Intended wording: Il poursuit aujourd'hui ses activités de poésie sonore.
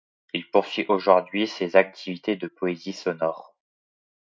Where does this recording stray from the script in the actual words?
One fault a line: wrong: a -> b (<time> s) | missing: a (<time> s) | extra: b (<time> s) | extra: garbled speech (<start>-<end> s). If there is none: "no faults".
no faults